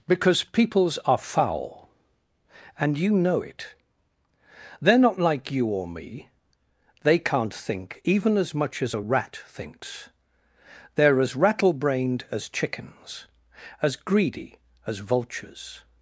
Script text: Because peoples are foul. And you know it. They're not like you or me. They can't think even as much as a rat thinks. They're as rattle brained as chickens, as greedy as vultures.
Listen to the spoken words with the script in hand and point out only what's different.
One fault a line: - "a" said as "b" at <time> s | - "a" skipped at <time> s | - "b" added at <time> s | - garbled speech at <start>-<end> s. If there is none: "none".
none